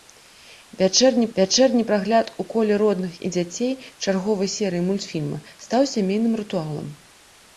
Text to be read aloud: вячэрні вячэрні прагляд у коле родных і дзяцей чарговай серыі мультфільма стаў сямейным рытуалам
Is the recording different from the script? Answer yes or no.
no